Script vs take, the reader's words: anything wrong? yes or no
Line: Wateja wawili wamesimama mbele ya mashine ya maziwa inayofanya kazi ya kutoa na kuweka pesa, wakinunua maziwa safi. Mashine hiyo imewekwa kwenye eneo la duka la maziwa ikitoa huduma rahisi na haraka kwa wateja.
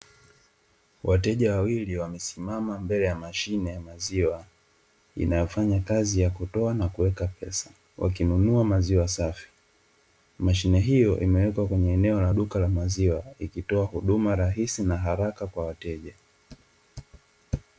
no